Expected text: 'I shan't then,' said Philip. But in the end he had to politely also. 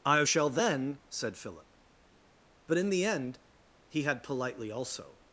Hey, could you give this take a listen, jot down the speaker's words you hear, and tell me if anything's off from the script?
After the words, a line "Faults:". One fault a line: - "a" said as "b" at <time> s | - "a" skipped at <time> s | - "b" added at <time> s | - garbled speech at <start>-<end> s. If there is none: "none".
'I shall then,' said Philip. But in the end he had politely also.
Faults:
- "shan't" said as "shall" at 0.2 s
- "to" skipped at 4.2 s